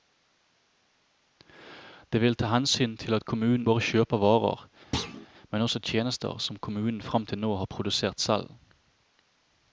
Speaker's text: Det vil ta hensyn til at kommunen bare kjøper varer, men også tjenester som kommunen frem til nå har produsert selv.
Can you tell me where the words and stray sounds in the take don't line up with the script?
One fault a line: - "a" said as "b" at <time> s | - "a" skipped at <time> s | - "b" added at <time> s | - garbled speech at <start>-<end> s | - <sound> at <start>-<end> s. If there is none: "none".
- thud at 4.9-5.3 s